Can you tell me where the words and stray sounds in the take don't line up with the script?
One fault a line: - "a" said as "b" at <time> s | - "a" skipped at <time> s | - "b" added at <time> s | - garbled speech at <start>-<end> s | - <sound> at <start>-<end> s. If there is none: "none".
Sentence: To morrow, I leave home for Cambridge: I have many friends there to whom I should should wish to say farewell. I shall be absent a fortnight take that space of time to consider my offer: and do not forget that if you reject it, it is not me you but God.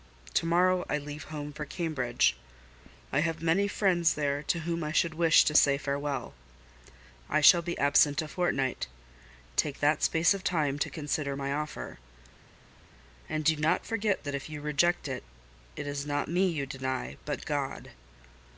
- "should" skipped at 5.1 s
- "deny" added at 16.7 s